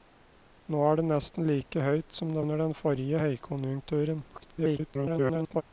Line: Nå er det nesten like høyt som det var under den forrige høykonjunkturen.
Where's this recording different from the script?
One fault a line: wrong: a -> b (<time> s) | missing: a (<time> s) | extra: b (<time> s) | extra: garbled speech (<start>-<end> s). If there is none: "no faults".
missing: var (2.4 s)
extra: garbled speech (4.3-5.6 s)